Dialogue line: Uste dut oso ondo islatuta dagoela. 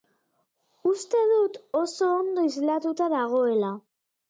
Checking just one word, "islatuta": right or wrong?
right